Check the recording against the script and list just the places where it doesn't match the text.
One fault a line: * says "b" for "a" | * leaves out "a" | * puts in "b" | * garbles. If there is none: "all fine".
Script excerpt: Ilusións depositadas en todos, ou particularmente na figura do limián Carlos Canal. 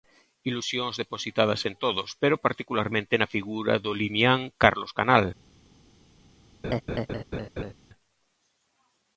* says "pero" for "ou"